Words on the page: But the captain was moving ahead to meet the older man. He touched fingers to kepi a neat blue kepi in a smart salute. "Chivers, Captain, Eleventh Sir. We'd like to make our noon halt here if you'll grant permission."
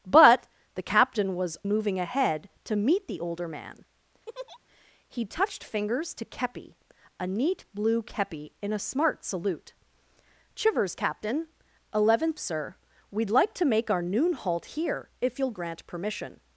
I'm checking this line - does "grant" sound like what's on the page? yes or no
yes